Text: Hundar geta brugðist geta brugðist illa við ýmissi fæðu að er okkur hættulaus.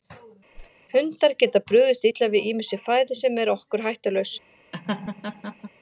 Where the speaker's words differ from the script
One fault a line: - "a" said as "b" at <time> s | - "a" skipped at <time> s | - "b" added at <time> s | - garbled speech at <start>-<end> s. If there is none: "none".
- "geta brugðist" skipped at 2.0 s
- "að" said as "sem" at 3.2 s